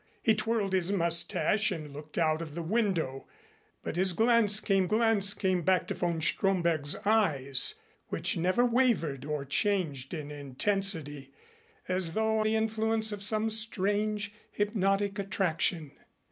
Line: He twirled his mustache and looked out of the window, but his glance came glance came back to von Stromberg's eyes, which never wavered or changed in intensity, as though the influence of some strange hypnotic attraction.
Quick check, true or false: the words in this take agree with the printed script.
true